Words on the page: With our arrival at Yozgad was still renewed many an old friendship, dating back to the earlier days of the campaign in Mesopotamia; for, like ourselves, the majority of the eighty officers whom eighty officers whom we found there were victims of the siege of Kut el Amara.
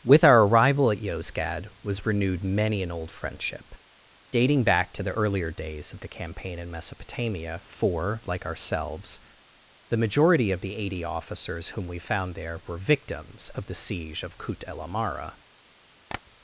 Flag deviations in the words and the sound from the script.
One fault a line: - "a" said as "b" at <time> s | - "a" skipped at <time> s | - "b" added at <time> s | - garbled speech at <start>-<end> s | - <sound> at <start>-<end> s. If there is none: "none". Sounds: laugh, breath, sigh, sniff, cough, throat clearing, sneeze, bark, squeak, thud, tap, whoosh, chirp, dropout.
- "still" skipped at 2.1 s
- "eighty officers whom" skipped at 11.8 s
- tap at 16.1-16.2 s